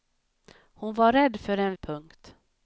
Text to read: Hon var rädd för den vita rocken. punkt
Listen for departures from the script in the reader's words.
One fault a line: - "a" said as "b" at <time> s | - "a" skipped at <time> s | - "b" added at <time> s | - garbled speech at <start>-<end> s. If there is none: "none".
- "vita rocken" skipped at 1.8 s